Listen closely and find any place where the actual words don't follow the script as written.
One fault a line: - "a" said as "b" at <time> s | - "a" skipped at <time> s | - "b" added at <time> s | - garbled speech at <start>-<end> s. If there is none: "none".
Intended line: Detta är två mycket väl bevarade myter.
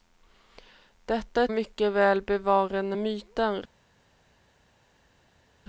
- "två" skipped at 1.5 s